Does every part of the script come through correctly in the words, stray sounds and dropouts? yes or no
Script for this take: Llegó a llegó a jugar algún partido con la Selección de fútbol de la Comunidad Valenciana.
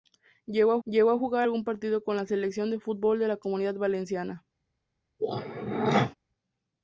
no